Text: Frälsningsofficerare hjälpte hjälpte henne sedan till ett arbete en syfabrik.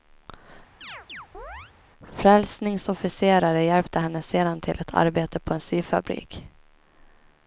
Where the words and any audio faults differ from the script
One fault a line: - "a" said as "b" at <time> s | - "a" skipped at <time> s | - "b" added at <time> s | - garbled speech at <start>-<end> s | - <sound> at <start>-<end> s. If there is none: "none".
- chirp at 0.8-1.7 s
- "hjälpte" skipped at 4.0 s
- "på" added at 5.4 s